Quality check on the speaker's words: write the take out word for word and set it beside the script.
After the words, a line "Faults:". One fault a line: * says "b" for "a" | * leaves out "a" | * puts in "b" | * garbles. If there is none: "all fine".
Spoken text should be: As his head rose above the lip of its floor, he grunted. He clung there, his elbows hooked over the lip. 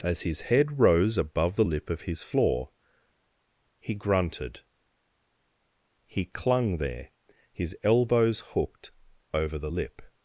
As his head rose above the lip of his floor, he grunted. He clung there, his elbows hooked over the lip.
Faults:
* says "his" for "its"